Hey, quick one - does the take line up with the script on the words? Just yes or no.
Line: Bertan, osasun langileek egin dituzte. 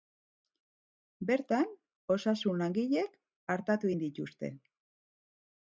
no